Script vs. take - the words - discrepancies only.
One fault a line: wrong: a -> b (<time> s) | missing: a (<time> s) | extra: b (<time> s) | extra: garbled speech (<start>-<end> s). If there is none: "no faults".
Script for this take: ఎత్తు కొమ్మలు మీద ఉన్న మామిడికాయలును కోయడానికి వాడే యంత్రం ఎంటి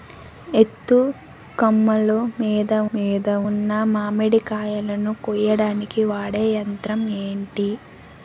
extra: మీద (2.9 s)